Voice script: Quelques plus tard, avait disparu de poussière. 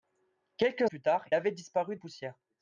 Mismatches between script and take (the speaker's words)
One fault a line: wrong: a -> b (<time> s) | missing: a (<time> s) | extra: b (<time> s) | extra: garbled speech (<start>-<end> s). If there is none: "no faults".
no faults